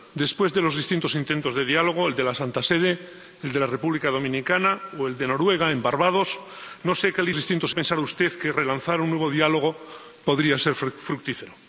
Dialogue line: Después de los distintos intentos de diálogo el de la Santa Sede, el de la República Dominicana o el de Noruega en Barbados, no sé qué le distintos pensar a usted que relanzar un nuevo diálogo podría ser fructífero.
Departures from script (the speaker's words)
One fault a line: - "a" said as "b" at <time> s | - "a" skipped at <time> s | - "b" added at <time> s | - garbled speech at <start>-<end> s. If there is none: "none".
none